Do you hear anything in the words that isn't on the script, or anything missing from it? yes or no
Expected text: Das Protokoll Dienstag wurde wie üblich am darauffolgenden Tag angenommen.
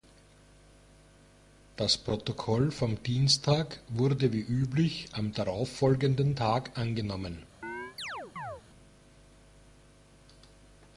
yes